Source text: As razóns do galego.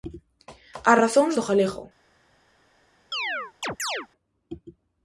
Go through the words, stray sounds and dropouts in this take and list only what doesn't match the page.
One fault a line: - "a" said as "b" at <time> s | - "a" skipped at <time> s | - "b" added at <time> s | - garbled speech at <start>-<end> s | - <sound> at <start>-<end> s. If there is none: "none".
- chirp at 3.1-4.1 s